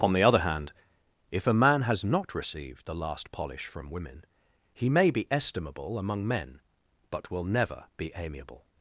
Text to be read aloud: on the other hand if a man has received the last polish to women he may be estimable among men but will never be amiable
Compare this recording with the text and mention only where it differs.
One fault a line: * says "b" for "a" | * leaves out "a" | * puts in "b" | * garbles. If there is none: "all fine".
* puts in "not"
* says "from" for "to"